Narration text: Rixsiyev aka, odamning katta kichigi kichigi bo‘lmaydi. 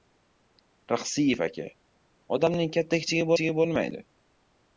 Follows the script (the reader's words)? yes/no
yes